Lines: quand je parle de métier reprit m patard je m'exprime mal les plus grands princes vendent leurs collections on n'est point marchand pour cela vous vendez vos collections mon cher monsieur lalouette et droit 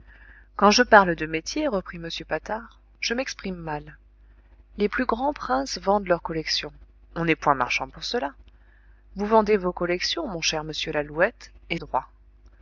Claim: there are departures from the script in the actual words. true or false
false